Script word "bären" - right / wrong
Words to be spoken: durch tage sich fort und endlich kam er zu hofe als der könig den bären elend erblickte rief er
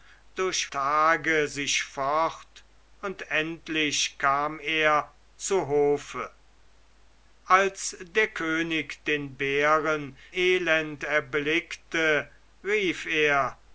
right